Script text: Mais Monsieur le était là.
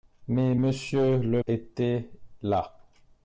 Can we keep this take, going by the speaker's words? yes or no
yes